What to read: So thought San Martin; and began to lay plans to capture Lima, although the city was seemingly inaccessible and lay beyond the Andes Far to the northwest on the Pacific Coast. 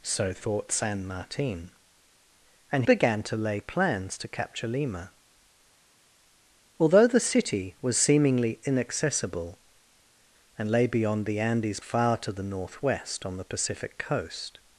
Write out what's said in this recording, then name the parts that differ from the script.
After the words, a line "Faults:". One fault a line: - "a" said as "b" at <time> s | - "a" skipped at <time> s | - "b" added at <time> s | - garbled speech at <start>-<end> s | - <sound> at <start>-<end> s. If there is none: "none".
So thought San Martin; and began to lay plans to capture Lima, although the city was seemingly inaccessible and lay beyond the Andes Far to the northwest on the Pacific Coast.
Faults:
none